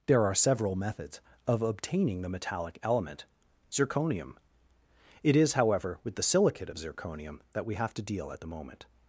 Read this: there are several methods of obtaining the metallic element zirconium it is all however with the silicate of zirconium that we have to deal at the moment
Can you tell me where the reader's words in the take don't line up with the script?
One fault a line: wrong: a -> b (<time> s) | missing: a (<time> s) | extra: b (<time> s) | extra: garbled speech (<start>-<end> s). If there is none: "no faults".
missing: all (5.5 s)